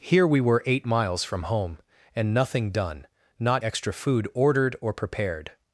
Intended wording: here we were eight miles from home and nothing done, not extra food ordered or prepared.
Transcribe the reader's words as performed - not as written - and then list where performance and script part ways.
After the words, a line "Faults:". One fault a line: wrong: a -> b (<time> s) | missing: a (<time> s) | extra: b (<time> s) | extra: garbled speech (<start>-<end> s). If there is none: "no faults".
here we were eight miles from home and nothing done, not extra food ordered or prepared.
Faults:
no faults